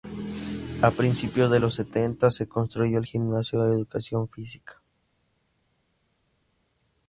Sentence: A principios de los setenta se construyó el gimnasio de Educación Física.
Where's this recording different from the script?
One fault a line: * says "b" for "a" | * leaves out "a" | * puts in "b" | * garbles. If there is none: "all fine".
all fine